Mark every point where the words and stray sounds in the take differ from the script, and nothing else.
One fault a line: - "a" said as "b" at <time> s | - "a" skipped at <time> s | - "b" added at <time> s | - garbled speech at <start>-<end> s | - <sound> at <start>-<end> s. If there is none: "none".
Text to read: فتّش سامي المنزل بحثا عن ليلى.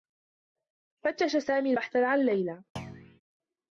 - "المنزل" skipped at 1.7 s
- thud at 2.8-3.2 s